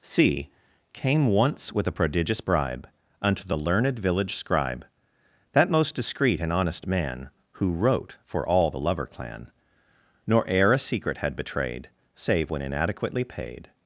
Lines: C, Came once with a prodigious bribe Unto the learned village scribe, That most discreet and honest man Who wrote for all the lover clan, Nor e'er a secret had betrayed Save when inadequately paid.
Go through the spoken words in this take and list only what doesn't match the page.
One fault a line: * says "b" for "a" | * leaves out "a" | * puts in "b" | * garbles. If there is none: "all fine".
all fine